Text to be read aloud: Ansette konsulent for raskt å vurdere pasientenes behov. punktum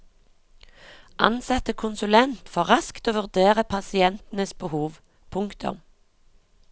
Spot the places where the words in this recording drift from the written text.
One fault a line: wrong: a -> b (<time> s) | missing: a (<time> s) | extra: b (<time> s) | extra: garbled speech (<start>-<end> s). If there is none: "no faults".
no faults